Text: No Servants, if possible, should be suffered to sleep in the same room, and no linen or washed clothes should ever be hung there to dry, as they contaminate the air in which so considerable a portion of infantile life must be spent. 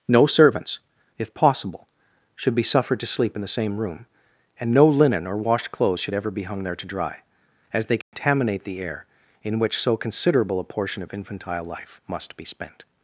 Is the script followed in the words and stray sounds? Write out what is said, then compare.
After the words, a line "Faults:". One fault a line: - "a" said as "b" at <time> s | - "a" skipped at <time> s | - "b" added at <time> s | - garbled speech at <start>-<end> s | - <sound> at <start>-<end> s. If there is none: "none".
No Servants, if possible, should be suffered to sleep in the same room, and no linen or washed clothes should ever be hung there to dry, as they contaminate the air in which so considerable a portion of infantile life must be spent.
Faults:
- dropout at 8.0-8.1 s